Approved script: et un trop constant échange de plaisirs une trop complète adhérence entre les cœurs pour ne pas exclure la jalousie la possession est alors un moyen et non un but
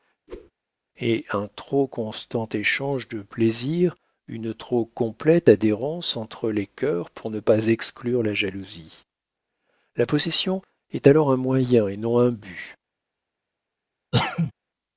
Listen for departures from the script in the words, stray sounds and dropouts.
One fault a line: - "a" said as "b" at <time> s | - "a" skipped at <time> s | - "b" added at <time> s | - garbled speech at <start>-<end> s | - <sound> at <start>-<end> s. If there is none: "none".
- whoosh at 0.3-0.5 s
- cough at 14.1-14.5 s